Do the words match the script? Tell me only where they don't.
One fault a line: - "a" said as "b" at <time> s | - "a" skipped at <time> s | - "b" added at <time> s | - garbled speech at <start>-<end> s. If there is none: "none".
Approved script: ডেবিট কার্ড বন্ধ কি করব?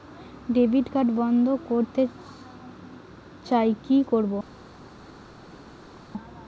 - "করতে চাই" added at 1.7 s